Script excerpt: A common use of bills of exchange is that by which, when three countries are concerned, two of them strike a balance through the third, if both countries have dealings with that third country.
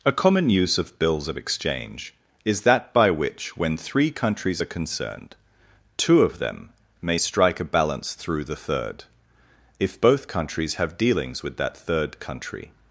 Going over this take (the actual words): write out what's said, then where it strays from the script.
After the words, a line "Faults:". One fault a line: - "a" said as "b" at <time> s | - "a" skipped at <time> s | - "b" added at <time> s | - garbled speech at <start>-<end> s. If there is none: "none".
A common use of bills of exchange is that by which, when three countries are concerned, two of them may strike a balance through the third, if both countries have dealings with that third country.
Faults:
- "may" added at 7.0 s